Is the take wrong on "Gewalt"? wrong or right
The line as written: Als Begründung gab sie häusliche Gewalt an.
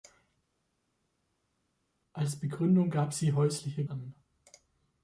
wrong